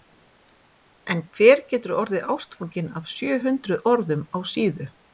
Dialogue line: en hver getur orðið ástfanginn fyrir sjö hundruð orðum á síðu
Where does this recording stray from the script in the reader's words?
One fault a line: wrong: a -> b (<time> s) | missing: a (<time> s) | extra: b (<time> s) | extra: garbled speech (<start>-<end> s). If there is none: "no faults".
wrong: fyrir -> af (3.0 s)